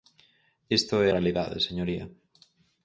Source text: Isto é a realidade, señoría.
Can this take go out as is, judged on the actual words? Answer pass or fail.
fail